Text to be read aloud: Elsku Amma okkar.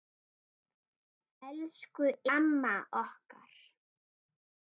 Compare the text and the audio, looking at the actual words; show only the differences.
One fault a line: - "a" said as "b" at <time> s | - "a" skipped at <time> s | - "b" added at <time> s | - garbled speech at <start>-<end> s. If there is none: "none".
none